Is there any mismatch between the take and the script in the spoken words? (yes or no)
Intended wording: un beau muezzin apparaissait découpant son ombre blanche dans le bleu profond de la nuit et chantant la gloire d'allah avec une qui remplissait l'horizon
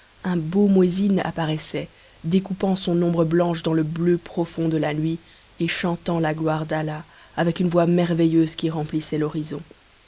yes